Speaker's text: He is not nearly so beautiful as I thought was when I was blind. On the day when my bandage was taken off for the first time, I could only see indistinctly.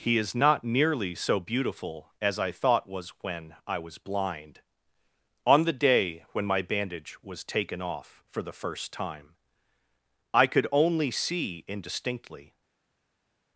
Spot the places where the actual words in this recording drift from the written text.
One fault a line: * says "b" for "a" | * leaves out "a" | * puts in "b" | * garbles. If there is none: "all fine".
all fine